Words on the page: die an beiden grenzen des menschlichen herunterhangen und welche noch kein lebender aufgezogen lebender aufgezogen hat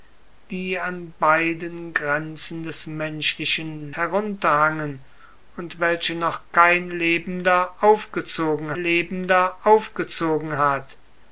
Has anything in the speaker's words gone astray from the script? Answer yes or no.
no